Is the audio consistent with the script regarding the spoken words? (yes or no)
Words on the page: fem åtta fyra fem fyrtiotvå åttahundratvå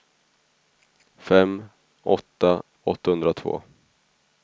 no